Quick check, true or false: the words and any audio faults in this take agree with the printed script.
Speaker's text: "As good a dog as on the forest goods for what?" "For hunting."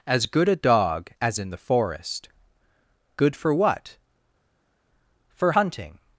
false